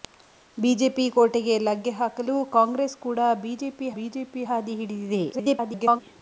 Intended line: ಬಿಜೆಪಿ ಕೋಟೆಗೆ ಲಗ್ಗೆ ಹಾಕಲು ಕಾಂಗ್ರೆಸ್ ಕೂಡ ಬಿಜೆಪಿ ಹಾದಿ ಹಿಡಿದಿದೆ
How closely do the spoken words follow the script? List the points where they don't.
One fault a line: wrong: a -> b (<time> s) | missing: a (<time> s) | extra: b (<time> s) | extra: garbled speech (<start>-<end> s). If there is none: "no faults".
extra: ಬಿಜೆಪಿ (4.0 s)
extra: garbled speech (5.3-6.0 s)